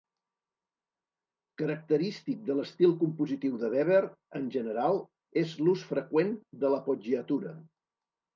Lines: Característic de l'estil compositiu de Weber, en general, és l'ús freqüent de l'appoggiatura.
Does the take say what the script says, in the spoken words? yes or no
yes